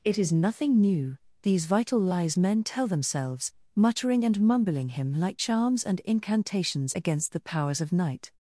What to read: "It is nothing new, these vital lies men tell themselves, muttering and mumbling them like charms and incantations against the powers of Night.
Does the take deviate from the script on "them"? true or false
true